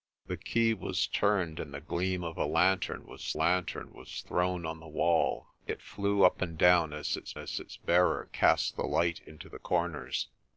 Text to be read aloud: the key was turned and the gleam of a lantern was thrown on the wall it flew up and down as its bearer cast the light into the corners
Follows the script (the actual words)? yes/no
no